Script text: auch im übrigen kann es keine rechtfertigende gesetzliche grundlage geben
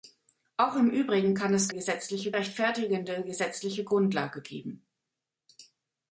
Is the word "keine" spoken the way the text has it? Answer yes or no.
no